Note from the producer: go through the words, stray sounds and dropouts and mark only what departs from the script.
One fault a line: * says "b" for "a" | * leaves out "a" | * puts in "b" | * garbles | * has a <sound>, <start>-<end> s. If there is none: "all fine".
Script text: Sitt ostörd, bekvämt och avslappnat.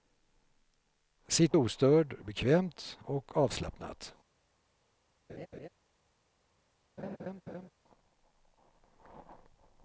* has a laugh, 5.3-5.7 s
* has a laugh, 7.0-7.7 s